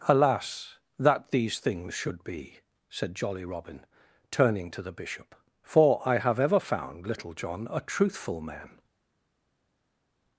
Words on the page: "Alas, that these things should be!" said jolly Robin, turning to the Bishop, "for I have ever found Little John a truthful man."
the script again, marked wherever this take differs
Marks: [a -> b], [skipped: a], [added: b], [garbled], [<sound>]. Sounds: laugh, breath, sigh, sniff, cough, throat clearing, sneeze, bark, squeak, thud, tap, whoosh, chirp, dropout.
"Alas, that these things should be!" said jolly Robin, turning to the Bishop, "for I have ever found Little John a truthful man."